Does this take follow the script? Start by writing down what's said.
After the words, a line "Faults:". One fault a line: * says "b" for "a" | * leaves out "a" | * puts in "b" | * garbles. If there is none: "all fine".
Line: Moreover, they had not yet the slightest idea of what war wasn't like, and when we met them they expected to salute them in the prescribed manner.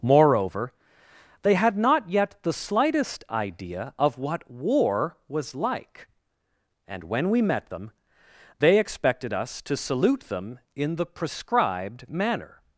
Moreover, they had not yet the slightest idea of what war was like, and when we met them they expected us to salute them in the prescribed manner.
Faults:
* says "was" for "wasn't"
* puts in "us"